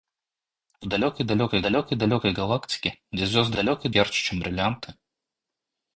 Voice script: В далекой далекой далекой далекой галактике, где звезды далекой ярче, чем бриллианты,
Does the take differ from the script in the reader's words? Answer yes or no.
no